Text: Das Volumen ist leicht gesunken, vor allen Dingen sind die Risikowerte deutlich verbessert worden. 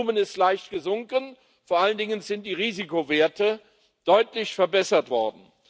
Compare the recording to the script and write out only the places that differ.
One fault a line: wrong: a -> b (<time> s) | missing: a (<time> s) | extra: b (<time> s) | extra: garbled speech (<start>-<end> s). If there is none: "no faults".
no faults